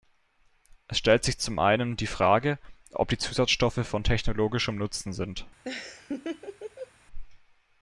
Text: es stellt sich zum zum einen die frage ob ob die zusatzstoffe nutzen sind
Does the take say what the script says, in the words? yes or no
no